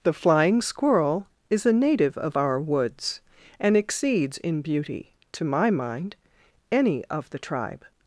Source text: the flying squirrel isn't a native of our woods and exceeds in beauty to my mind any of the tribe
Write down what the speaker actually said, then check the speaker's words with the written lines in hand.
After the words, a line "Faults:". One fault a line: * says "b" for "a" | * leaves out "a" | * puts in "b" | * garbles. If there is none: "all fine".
the flying squirrel is a native of our woods and exceeds in beauty to my mind any of the tribe
Faults:
* says "is" for "isn't"